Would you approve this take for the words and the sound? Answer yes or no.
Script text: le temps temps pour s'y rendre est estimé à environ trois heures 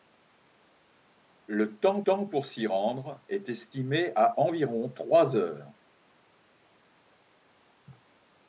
yes